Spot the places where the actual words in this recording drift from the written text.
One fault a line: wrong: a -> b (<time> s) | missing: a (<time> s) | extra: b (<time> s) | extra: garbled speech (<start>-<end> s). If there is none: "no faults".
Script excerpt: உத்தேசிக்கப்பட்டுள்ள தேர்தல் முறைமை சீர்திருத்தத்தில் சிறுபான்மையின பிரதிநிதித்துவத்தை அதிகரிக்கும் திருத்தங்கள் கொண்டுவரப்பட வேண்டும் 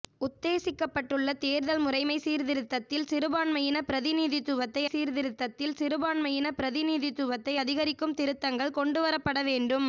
extra: சீர்திருத்தத்தில் சிறுபான்மையின பிரதிநிதித்துவத்தை (4.8 s)